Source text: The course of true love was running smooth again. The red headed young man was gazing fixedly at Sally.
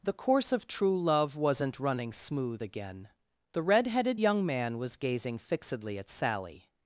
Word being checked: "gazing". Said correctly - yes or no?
yes